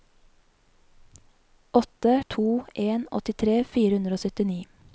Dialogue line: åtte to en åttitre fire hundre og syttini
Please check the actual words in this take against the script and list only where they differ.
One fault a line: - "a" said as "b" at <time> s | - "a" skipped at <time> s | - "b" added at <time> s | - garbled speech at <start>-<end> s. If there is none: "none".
none